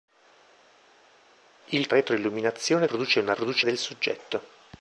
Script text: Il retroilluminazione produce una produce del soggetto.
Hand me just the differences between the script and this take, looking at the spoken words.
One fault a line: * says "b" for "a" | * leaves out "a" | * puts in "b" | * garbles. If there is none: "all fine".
all fine